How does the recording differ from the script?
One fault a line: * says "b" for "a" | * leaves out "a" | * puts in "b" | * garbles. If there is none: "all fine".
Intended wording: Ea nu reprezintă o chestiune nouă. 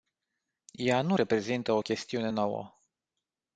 all fine